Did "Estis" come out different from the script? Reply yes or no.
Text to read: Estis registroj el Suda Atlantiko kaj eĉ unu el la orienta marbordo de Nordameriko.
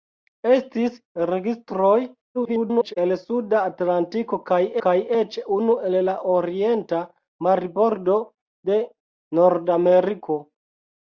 no